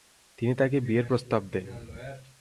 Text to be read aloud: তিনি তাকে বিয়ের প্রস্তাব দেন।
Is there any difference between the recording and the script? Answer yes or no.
no